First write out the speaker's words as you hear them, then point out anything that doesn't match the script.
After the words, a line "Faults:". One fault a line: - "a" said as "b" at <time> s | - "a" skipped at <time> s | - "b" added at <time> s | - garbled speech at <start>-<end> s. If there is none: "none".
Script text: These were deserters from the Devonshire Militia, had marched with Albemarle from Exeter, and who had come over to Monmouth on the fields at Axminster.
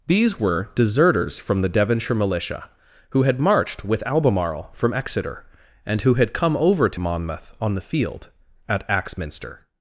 These were deserters from the Devonshire Militia, who had marched with Albemarle from Exeter, and who had come over to Monmouth on the field at Axminster.
Faults:
- "who" added at 3.1 s
- "fields" said as "field" at 7.8 s